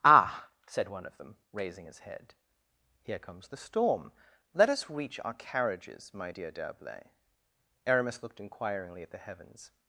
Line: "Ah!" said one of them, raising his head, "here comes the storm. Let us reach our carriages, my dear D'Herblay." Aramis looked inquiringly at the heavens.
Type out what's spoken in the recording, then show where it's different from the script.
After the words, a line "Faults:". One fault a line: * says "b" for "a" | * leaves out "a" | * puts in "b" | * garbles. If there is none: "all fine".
"Ah!" said one of them, raising his head, "here comes the storm. Let us reach our carriages, my dear D'Herblay." Aramis looked inquiringly at the heavens.
Faults:
all fine